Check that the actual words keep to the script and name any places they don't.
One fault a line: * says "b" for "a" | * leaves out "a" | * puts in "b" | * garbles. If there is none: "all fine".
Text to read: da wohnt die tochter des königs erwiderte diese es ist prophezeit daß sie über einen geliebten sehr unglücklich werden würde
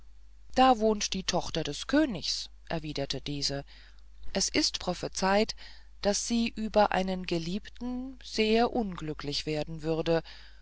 all fine